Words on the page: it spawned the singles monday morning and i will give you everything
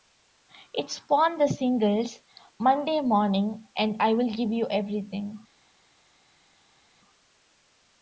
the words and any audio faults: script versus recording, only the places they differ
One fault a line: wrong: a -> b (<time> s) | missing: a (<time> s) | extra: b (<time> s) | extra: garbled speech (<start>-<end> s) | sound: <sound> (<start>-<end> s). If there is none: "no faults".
no faults